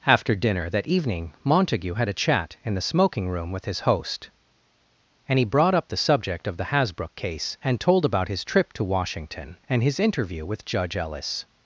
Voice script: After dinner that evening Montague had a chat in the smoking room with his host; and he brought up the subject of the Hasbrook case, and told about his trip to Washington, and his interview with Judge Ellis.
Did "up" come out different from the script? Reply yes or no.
no